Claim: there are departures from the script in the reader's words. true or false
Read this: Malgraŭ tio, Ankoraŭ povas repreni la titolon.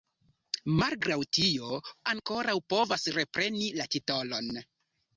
false